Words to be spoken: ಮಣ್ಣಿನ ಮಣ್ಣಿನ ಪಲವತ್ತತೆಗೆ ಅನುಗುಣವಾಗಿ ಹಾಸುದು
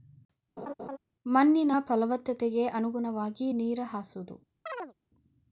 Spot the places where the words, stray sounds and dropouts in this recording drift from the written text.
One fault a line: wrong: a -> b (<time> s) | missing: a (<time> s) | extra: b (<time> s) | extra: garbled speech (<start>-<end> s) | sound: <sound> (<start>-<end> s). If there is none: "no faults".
sound: laugh (0.6-1.0 s)
missing: ಮಣ್ಣಿನ (1.7 s)
extra: ನೇರ (3.5 s)
sound: chirp (4.7-4.9 s)